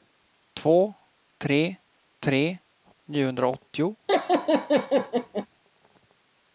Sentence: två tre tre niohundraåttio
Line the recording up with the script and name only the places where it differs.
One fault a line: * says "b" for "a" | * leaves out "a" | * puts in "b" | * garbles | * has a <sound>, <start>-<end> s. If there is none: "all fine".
* has a laugh, 4.1-5.5 s